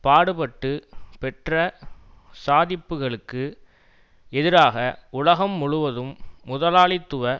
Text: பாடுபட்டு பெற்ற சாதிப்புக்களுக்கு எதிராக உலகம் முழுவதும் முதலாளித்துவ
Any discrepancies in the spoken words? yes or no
no